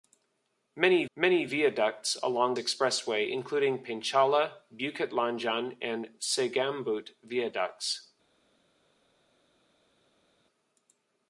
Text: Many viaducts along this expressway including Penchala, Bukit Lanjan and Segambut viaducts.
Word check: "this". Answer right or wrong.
wrong